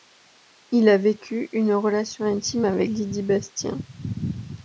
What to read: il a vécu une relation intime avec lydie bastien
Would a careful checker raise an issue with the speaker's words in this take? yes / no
no